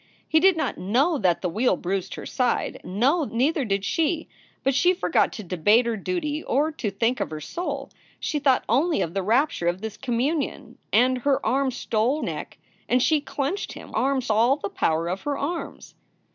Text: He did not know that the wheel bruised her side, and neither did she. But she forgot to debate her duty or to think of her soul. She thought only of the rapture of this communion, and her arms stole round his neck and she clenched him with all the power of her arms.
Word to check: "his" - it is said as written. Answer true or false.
false